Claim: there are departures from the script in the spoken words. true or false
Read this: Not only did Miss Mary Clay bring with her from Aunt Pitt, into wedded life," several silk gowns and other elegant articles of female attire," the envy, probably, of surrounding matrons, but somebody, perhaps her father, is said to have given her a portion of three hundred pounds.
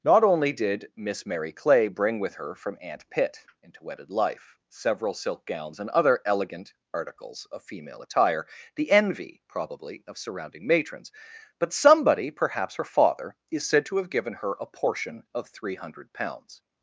false